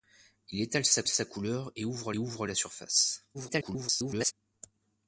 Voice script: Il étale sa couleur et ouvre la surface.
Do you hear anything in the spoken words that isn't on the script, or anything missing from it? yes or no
yes